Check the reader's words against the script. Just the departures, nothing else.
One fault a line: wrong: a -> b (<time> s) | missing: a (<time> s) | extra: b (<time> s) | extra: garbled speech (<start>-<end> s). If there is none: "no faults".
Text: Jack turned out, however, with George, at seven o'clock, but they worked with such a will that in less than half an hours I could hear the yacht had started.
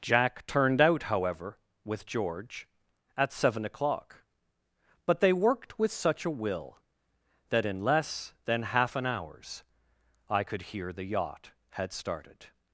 no faults